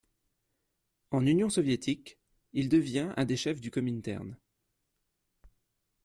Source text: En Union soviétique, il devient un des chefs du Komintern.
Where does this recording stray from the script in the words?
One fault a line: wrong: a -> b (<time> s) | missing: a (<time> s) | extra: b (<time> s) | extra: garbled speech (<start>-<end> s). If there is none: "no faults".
no faults